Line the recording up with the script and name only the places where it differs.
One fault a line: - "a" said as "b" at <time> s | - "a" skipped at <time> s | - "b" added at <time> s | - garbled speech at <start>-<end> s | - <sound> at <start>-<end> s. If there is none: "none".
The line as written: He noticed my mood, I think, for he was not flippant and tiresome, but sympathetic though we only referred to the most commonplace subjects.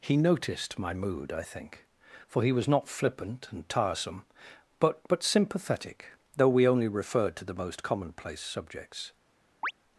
- "but" added at 5.1 s
- chirp at 9.6-9.7 s